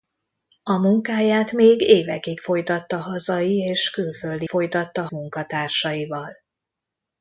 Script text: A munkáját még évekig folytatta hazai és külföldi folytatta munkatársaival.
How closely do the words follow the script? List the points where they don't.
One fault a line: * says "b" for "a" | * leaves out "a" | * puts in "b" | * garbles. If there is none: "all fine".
all fine